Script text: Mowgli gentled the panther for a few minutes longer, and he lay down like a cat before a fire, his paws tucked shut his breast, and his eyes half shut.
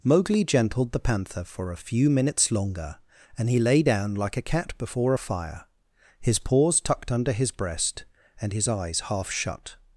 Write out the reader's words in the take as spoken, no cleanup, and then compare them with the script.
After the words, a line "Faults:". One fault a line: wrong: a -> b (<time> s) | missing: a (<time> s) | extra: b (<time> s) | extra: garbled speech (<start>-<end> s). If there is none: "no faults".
Mowgli gentled the panther for a few minutes longer, and he lay down like a cat before a fire, his paws tucked under his breast, and his eyes half shut.
Faults:
wrong: shut -> under (7.1 s)